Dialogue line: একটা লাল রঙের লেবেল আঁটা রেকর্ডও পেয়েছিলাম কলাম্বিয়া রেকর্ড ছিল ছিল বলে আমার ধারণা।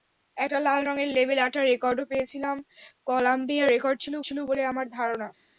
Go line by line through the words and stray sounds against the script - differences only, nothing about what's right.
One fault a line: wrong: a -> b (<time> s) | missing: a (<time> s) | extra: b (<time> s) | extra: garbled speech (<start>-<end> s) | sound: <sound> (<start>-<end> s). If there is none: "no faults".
no faults